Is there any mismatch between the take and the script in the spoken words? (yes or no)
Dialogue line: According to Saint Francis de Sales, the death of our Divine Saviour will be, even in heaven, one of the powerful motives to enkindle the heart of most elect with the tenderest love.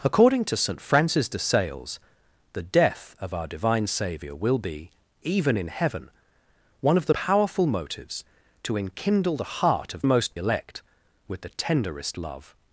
no